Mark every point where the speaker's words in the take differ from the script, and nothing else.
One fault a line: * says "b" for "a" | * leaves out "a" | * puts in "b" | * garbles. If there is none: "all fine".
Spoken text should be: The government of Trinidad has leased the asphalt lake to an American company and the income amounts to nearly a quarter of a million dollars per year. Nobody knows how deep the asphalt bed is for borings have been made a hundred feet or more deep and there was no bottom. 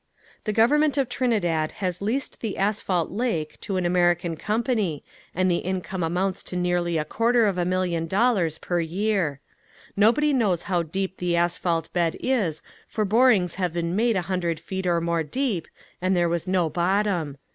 all fine